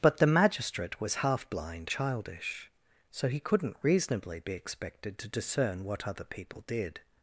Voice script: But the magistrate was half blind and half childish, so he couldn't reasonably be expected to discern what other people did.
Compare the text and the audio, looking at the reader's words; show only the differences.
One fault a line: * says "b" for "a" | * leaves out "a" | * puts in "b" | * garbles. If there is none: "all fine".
* leaves out "and half"